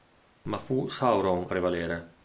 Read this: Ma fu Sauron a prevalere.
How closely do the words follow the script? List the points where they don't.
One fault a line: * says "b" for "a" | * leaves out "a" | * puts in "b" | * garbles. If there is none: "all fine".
* leaves out "a"